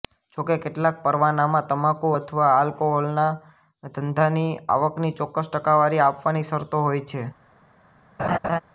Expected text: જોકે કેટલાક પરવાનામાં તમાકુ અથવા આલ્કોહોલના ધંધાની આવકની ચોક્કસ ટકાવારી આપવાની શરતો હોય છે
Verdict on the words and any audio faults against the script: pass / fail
fail